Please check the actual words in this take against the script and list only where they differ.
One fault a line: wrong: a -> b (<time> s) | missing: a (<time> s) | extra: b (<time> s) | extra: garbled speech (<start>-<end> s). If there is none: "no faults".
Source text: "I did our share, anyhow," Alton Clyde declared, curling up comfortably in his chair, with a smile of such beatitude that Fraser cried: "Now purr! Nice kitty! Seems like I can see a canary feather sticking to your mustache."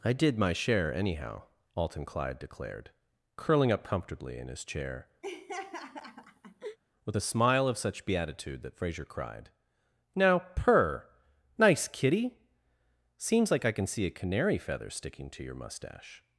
wrong: our -> my (0.4 s)